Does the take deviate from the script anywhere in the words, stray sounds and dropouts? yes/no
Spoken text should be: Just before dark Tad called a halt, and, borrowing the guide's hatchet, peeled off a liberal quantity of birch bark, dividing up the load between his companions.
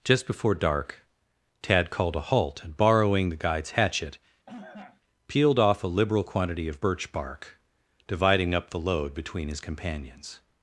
yes